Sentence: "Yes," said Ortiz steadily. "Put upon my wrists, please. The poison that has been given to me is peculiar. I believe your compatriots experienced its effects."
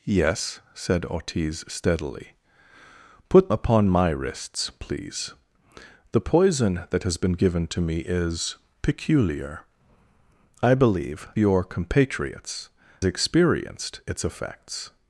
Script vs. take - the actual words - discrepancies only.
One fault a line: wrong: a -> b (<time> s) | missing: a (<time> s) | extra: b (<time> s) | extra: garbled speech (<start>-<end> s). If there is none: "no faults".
no faults